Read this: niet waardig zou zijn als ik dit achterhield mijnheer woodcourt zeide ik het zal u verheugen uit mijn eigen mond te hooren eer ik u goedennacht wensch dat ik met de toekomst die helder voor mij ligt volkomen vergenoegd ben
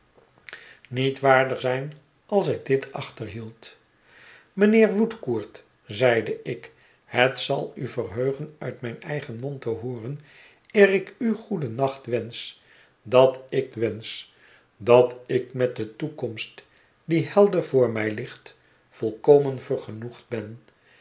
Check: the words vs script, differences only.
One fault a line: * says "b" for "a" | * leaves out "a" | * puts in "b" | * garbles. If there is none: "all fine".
* leaves out "zou"
* puts in "wensch dat ik"